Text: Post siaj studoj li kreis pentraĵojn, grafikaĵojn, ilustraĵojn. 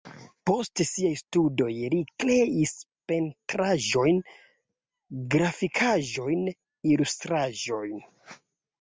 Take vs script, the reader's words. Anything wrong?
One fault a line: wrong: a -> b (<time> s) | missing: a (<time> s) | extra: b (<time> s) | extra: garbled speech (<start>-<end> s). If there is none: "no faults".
no faults